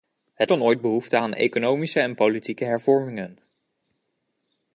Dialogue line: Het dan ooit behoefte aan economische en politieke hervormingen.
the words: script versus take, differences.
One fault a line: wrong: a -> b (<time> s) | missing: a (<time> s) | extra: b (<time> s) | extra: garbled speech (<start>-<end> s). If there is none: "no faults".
no faults